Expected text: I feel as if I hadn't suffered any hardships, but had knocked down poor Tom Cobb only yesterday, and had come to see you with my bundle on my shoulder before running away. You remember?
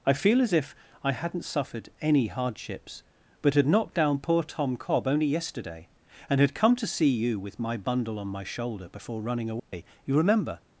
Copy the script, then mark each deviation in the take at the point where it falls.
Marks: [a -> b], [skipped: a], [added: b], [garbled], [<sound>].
I feel as if I hadn't suffered any hardships, but had knocked down poor Tom Cobb only yesterday, and had come to see you with my bundle on my shoulder before running away. [dropout] You remember?